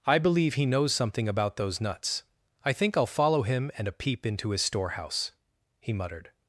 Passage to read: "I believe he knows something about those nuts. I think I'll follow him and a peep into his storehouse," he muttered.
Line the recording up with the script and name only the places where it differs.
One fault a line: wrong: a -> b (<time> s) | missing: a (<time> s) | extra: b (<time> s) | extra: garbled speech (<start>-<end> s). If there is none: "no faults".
no faults